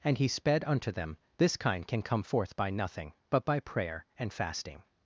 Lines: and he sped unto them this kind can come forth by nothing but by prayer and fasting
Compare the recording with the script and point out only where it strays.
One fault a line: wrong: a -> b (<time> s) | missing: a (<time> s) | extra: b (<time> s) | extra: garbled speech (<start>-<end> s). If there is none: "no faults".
no faults